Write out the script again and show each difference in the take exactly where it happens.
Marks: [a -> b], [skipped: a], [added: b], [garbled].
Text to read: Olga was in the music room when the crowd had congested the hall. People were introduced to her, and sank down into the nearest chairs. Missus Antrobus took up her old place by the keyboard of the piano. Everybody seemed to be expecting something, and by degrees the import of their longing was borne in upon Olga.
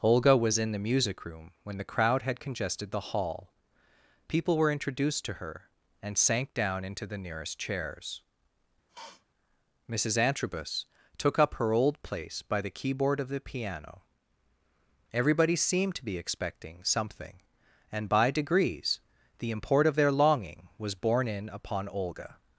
Olga was in the music room when the crowd had congested the hall. People were introduced to her, and sank down into the nearest chairs. Missus Antrobus took up her old place by the keyboard of the piano. Everybody seemed to be expecting something, and by degrees the import of their longing was borne in upon Olga.